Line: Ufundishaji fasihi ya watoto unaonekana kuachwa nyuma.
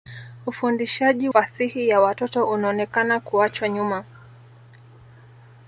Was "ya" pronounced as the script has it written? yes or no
yes